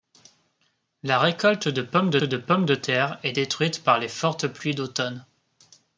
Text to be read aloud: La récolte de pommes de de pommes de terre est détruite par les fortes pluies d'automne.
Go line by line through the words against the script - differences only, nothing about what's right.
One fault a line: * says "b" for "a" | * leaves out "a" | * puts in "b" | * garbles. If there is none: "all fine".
all fine